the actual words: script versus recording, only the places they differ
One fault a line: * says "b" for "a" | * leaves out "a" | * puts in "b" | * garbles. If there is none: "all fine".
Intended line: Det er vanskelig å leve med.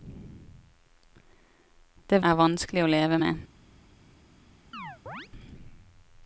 all fine